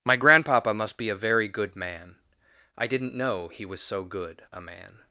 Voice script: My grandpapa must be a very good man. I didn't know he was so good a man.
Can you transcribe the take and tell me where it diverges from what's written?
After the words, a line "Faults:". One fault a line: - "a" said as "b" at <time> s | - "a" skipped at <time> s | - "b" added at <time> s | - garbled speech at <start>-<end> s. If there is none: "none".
My grandpapa must be a very good man. I didn't know he was so good a man.
Faults:
none